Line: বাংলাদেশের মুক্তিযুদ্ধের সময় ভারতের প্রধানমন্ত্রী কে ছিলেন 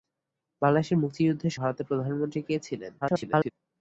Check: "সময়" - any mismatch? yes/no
yes